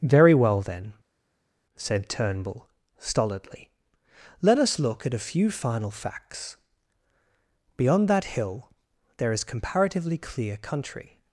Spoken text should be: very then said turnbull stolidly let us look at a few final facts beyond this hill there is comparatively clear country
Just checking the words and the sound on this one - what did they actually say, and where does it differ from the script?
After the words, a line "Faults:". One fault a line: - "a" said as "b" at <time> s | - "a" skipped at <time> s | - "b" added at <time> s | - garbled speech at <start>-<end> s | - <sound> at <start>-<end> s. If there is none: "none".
very well then said turnbull stolidly let us look at a few final facts beyond that hill there is comparatively clear country
Faults:
- "well" added at 0.3 s
- "this" said as "that" at 8.1 s